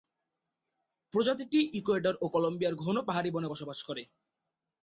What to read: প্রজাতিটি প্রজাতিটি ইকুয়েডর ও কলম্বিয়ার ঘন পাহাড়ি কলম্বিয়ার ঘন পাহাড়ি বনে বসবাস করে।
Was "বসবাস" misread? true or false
false